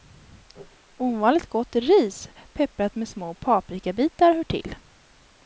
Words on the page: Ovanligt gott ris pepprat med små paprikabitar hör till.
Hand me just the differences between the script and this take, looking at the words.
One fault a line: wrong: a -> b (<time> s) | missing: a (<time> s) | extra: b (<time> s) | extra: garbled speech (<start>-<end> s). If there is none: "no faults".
no faults